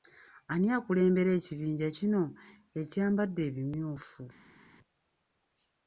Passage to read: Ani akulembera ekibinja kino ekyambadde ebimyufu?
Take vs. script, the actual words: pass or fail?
pass